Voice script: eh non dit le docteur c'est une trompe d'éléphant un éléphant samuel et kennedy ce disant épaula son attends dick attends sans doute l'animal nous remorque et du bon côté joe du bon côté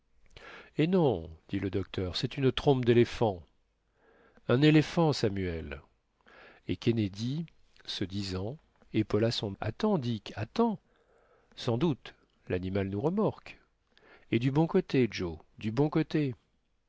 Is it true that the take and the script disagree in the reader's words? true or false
false